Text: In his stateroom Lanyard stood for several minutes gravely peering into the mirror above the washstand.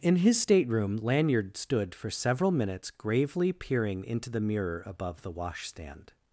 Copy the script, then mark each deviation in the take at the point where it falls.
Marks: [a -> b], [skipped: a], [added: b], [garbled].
In his stateroom Lanyard stood for several minutes gravely peering into the mirror above the washstand.